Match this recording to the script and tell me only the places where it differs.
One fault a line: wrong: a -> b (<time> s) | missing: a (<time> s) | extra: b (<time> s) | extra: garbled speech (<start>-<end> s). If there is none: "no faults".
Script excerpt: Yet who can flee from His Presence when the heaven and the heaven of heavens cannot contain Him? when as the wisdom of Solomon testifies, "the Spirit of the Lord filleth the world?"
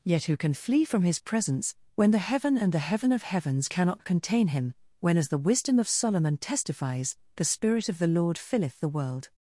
no faults